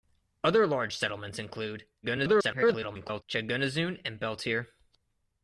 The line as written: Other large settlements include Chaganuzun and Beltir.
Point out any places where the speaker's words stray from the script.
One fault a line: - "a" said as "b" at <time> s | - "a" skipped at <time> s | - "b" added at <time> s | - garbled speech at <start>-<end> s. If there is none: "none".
- garbled speech at 2.0-3.2 s